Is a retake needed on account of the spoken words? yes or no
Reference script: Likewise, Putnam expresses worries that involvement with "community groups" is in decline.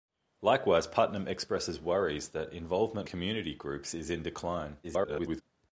yes